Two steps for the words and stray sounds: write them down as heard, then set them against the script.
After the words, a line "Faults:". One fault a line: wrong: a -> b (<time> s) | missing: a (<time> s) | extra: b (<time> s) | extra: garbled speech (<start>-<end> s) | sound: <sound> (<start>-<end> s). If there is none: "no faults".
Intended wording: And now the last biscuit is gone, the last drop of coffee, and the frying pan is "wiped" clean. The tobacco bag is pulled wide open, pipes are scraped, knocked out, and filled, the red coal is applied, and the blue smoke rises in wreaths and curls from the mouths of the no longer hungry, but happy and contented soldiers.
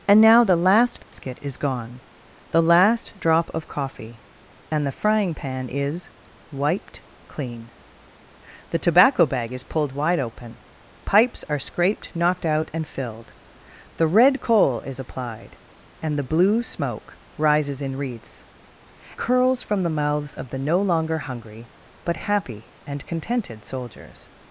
And now the last biscuit is gone, the last drop of coffee, and the frying pan is "wiped" clean. The tobacco bag is pulled wide open, pipes are scraped, knocked out, and filled, the red coal is applied, and the blue smoke rises in wreaths curls from the mouths of the no longer hungry, but happy and contented soldiers.
Faults:
sound: dropout (1.0-1.1 s)
missing: and (18.4 s)